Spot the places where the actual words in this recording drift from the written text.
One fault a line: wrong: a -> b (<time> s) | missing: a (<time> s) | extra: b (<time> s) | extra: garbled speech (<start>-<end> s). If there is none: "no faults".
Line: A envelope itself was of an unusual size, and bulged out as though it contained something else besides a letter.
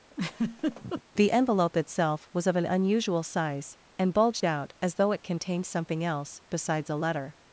wrong: A -> The (1.2 s)